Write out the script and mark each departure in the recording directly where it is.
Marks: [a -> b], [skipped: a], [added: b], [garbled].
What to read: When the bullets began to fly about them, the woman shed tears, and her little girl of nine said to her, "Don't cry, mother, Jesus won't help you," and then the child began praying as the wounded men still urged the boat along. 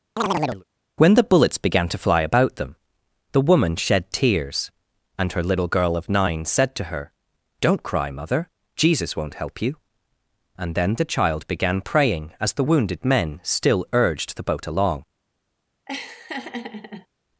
When the bullets began to fly about them, the woman shed tears, and her little girl of nine said to her, "Don't cry, mother, Jesus won't help you," and then the child began praying as the wounded men still urged the boat along.